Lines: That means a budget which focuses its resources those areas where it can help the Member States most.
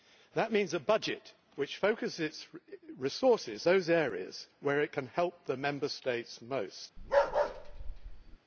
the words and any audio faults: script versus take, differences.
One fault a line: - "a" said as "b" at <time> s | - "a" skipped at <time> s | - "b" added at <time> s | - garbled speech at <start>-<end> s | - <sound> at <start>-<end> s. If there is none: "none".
- bark at 7.0-8.4 s